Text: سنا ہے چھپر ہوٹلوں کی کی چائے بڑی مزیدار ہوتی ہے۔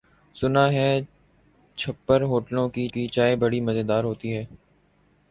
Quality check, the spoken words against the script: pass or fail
pass